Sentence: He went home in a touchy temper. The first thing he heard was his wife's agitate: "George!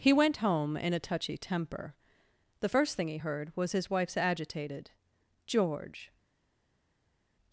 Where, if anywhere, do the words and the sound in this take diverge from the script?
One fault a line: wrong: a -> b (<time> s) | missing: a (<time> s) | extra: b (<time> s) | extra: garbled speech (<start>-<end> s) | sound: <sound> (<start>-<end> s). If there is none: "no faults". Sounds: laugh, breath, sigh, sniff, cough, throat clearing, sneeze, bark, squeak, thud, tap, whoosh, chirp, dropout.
wrong: agitate -> agitated (4.2 s)